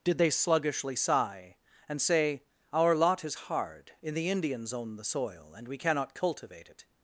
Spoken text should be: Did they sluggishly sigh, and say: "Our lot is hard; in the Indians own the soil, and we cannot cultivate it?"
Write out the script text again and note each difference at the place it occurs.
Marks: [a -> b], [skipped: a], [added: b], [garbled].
Did they sluggishly sigh, and say: "Our lot is hard; in the Indians own the soil, and we cannot cultivate it?"